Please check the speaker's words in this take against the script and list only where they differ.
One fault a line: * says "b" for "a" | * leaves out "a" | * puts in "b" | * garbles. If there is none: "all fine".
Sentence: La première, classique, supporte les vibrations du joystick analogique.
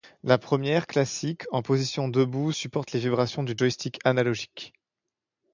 * puts in "en position debout"